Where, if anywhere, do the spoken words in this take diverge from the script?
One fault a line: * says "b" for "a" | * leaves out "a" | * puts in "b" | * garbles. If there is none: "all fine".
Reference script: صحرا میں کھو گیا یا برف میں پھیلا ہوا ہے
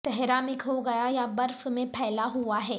all fine